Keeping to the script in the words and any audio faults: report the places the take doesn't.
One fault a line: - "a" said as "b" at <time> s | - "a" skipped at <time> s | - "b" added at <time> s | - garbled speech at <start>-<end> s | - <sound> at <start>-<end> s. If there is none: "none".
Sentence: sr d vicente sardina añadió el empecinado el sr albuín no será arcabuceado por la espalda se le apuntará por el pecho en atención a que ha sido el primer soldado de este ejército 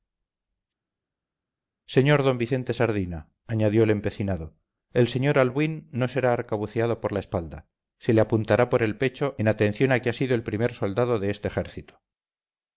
none